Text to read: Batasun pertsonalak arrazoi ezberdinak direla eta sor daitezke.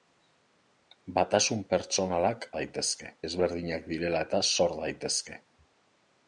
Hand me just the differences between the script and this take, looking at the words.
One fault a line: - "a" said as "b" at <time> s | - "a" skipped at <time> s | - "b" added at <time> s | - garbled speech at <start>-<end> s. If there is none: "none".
- "arrazoi" said as "daitezke" at 2.6 s